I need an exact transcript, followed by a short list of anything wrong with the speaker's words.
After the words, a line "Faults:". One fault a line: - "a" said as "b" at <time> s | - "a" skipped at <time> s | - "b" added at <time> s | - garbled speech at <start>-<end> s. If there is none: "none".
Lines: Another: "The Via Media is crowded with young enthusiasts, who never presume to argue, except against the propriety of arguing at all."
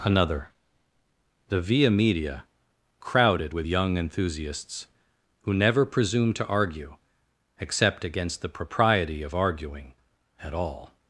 Another: "The Via Media crowded with young enthusiasts, who never presume to argue, except against the propriety of arguing at all."
Faults:
- "is" skipped at 2.5 s